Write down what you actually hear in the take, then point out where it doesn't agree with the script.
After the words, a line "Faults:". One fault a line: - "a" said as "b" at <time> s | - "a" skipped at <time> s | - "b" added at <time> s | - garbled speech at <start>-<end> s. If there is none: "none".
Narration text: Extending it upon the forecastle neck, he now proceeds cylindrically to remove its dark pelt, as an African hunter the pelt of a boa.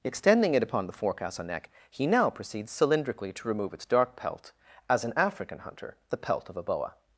Extending it upon the forecastle neck, he now proceeds cylindrically to remove its dark pelt, as an African hunter the pelt of a boa.
Faults:
none